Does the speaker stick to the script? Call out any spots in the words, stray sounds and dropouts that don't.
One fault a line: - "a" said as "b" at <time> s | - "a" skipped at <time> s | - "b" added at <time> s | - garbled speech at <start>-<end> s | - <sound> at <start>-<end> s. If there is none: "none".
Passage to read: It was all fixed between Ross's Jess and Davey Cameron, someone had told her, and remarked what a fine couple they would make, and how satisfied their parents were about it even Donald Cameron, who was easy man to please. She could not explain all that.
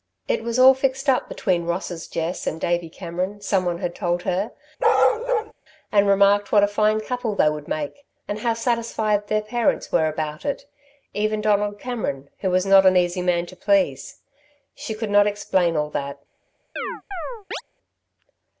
- "up" added at 1.1 s
- bark at 4.8-5.5 s
- "not an" added at 12.7 s
- chirp at 16.8-17.6 s